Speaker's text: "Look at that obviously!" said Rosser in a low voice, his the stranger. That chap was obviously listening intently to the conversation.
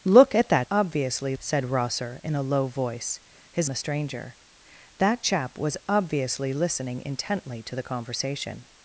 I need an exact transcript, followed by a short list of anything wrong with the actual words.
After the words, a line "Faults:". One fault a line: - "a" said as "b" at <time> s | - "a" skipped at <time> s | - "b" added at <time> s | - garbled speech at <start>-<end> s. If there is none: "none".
"Look at that obviously!" said Rosser in a low voice, his the stranger. That chap was obviously listening intently to the conversation.
Faults:
none